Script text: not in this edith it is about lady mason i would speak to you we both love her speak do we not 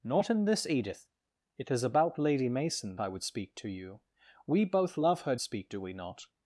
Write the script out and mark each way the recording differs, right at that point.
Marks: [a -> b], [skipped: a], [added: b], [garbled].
not in this edith it is about lady mason i would speak to you we both love her speak do we not